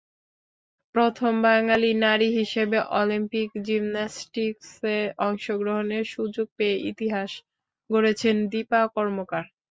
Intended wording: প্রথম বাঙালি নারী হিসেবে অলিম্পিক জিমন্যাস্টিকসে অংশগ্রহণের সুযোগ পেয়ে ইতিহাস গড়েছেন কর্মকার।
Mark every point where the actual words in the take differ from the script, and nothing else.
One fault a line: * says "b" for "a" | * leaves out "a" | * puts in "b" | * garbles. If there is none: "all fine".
* puts in "দীপা"